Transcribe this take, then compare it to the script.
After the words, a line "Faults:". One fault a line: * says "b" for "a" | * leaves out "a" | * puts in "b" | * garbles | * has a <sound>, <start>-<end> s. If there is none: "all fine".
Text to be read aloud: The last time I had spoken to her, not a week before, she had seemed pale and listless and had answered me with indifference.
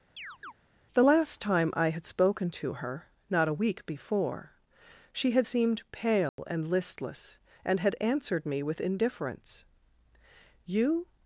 The last time I had spoken to her, not a week before, she had seemed pale and listless and had answered me with indifference. "You
Faults:
* has a chirp, 0.2-0.5 s
* has a dropout, 6.3-6.4 s
* puts in "You"